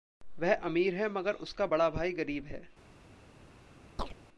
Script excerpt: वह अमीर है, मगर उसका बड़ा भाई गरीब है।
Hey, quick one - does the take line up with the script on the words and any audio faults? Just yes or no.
no